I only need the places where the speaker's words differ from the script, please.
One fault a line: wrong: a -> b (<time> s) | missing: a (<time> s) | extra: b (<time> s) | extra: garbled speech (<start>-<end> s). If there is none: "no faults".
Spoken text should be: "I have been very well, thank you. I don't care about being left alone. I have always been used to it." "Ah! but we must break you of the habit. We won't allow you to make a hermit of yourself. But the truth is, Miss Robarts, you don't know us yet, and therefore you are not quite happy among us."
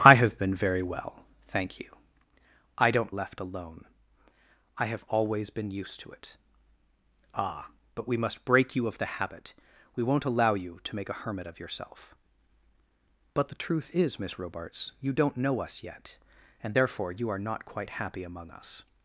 missing: care about being (3.1 s)